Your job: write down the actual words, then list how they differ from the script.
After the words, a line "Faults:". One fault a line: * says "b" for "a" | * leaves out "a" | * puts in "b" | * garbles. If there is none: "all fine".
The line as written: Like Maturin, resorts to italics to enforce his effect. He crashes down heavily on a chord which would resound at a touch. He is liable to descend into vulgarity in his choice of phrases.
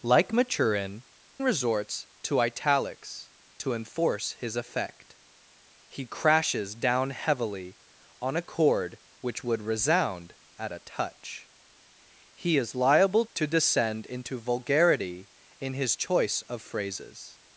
Like Maturin, resorts to italics to enforce his effect. He crashes down heavily on a chord which would resound at a touch. He is liable to descend into vulgarity in his choice of phrases.
Faults:
all fine